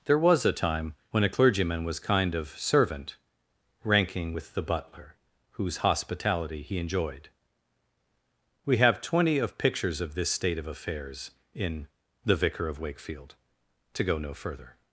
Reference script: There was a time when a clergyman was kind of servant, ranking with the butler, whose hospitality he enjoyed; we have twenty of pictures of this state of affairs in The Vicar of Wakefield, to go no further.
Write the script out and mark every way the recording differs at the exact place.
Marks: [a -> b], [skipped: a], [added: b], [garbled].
There was a time when a clergyman was kind of servant, ranking with the butler, whose hospitality he enjoyed; we have twenty of pictures of this state of affairs in The Vicar of Wakefield, to go no further.